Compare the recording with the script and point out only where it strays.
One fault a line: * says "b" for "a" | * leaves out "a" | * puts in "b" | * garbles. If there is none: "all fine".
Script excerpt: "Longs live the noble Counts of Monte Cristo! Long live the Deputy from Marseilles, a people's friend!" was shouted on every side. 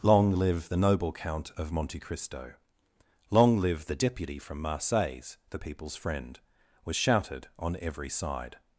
* says "Long" for "Longs"
* says "Count" for "Counts"
* says "the" for "a"